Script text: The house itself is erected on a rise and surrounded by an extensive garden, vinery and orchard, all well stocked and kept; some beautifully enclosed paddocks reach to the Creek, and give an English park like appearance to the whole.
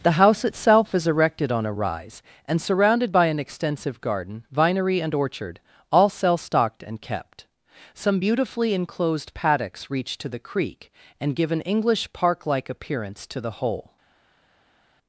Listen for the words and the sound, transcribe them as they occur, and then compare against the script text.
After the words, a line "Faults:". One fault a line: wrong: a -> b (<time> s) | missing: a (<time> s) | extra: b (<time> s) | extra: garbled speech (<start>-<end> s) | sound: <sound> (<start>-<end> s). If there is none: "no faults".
The house itself is erected on a rise and surrounded by an extensive garden, vinery and orchard, all cell stocked and kept; some beautifully enclosed paddocks reach to the Creek, and give an English park like appearance to the whole.
Faults:
wrong: well -> cell (6.1 s)